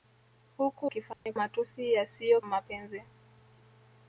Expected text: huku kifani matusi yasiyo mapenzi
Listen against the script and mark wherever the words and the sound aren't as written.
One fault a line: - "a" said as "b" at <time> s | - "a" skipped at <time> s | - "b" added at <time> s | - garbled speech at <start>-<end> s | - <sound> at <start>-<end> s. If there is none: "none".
- dropout at 1.1-1.3 s